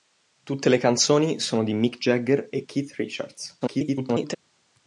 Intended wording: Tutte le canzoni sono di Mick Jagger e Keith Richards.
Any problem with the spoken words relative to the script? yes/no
yes